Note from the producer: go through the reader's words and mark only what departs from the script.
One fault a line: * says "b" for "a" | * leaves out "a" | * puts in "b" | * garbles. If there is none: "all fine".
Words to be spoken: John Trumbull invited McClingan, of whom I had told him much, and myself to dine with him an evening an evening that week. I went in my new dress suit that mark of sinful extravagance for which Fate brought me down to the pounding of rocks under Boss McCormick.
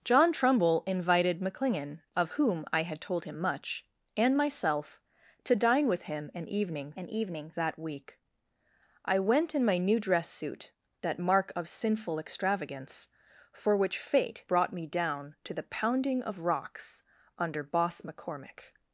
all fine